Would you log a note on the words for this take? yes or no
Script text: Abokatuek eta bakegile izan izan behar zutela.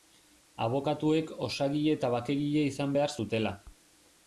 yes